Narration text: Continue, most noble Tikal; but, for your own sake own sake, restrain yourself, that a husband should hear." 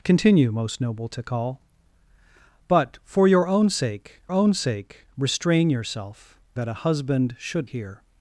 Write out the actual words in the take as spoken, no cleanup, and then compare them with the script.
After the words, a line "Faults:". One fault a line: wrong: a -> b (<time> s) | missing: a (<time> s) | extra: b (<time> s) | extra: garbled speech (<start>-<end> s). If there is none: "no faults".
Continue, most noble Tikal; but, for your own sake own sake, restrain yourself, that a husband should hear."
Faults:
no faults